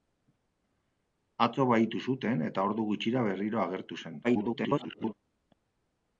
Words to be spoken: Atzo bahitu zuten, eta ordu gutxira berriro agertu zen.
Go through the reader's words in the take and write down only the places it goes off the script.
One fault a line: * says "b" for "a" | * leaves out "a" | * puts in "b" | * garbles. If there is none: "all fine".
* garbles